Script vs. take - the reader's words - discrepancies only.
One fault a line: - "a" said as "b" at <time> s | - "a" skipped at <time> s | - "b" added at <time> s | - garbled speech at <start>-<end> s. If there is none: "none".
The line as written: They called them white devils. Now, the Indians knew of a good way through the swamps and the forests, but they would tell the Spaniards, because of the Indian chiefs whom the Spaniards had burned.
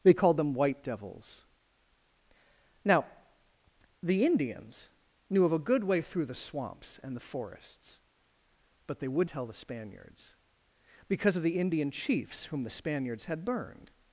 none